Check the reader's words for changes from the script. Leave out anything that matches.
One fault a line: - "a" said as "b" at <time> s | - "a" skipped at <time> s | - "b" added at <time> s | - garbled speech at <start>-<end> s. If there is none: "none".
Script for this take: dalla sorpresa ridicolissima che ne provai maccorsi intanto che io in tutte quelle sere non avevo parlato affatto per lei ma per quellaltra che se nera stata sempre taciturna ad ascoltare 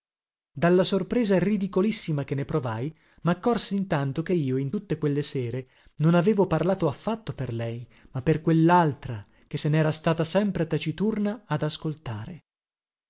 none